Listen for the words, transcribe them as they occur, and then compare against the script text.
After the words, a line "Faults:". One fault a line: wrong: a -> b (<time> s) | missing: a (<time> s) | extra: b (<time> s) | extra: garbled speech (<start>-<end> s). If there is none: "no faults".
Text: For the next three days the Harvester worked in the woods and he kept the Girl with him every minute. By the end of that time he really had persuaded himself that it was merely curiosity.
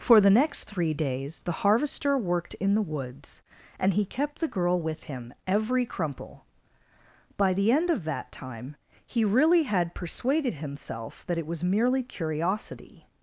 For the next three days the Harvester worked in the woods and he kept the Girl with him every crumple. By the end of that time he really had persuaded himself that it was merely curiosity.
Faults:
wrong: minute -> crumple (5.8 s)